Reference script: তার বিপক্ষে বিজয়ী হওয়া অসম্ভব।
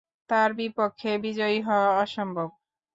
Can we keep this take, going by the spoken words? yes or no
yes